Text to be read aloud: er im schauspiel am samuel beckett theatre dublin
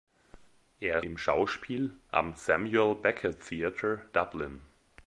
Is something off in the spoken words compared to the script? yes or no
no